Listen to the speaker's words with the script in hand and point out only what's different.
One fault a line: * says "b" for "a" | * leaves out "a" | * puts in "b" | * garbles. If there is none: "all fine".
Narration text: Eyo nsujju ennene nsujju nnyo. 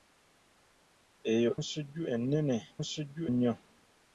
all fine